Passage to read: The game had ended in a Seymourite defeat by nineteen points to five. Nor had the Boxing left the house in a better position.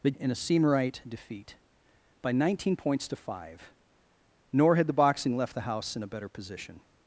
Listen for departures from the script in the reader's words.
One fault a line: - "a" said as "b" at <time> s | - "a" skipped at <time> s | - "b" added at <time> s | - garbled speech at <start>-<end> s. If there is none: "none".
- "game had ended" skipped at 0.1 s